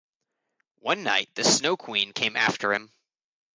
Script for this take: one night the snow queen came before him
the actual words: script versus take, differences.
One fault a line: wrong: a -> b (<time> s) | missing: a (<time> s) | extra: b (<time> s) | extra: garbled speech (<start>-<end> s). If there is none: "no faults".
wrong: before -> after (2.4 s)